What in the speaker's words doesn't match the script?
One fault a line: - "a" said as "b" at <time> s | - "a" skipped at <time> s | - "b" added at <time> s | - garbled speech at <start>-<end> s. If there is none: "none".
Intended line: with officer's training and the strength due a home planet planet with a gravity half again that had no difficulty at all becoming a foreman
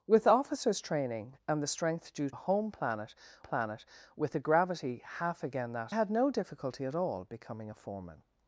none